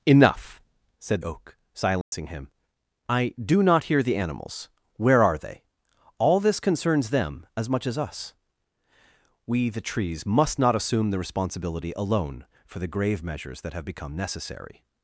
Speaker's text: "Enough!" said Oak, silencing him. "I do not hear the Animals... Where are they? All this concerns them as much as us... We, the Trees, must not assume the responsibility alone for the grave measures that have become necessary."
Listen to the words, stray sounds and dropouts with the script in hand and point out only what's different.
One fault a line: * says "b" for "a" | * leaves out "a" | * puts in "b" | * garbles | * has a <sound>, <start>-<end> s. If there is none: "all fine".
* has a dropout, 2.0-2.1 s